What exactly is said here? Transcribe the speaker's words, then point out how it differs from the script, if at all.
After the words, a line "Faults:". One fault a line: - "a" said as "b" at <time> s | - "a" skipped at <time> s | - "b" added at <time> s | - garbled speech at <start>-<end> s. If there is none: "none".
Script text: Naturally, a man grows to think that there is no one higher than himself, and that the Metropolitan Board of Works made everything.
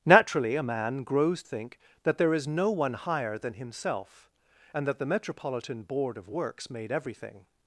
Naturally, a man grows think that there is no one higher than himself, and that the Metropolitan Board of Works made everything.
Faults:
- "to" skipped at 1.4 s